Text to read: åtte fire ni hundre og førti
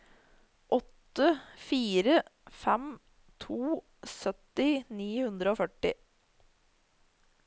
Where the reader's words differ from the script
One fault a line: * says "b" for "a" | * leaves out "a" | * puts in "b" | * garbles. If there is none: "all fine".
* puts in "fem to sytti"